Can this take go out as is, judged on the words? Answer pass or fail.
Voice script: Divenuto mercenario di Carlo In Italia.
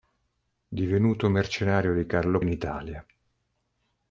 pass